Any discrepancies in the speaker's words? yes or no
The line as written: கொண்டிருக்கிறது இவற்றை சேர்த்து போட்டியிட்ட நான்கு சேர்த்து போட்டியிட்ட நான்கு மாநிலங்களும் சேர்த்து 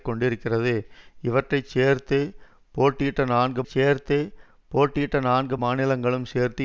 no